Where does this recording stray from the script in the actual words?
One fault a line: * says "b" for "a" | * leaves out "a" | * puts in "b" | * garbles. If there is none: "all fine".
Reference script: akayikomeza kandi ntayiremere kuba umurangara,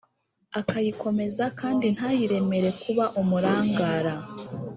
all fine